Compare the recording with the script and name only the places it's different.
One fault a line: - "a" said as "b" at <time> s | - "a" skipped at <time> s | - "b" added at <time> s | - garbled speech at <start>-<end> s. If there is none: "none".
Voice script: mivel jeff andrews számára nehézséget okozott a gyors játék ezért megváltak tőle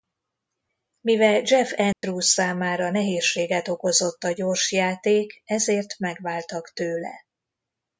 none